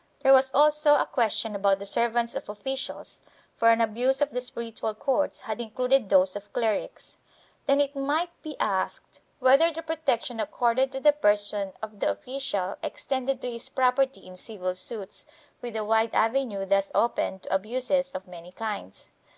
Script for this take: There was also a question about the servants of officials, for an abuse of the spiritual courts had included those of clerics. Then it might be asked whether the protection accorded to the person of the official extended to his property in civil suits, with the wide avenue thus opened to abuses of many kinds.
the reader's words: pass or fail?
pass